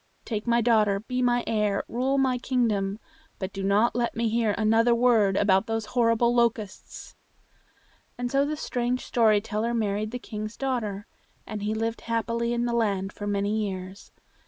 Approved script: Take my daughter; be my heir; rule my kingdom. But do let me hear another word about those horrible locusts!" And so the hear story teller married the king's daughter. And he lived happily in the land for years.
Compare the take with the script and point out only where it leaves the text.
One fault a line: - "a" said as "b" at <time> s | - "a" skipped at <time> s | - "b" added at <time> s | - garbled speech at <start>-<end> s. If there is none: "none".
- "not" added at 3.6 s
- "hear" said as "strange" at 8.6 s
- "many" added at 13.3 s